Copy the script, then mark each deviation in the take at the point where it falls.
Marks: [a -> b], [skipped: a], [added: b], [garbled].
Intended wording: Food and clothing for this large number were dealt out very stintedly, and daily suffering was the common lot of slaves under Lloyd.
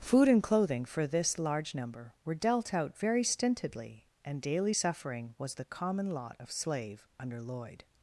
Food and clothing for this large number were dealt out very stintedly, and daily suffering was the common lot of [slaves -> slave] under Lloyd.